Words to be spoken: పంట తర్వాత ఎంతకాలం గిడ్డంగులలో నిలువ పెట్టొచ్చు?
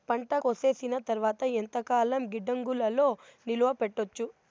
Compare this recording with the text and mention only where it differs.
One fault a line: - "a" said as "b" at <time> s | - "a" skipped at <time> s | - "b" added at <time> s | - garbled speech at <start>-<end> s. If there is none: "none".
- "కోసేసిన" added at 0.4 s